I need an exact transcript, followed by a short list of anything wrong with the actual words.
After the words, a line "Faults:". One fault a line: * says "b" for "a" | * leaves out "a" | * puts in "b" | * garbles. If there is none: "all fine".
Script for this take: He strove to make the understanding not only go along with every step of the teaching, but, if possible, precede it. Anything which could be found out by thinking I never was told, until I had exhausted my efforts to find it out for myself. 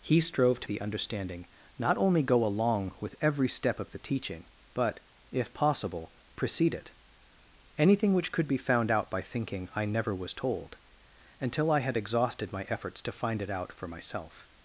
He strove to the understanding not only go along with every step of the teaching, but, if possible, precede it. Anything which could be found out by thinking I never was told, until I had exhausted my efforts to find it out for myself.
Faults:
* leaves out "make"